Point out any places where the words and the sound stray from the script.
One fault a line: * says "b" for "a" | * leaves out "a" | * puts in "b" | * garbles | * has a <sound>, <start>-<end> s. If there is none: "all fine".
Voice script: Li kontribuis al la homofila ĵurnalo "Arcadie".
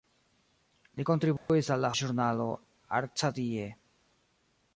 * has a dropout, 1.4-1.5 s
* leaves out "homofila"